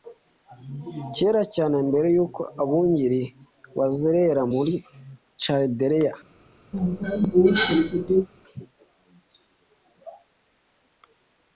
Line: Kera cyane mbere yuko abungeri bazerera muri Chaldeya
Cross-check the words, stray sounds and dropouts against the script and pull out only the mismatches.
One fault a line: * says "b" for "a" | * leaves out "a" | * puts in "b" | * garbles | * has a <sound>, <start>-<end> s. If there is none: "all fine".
* has a cough, 6.7-8.3 s